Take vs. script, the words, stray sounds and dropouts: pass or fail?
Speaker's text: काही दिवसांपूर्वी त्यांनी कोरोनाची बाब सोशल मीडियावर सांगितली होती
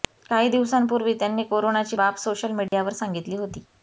fail